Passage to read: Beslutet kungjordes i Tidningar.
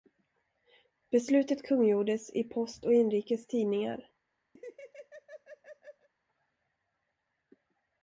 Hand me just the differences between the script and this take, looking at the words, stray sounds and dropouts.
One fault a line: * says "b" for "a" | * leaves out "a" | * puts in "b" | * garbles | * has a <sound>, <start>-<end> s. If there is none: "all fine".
* puts in "Post och Inrikes"
* has a laugh, 4.6-6.1 s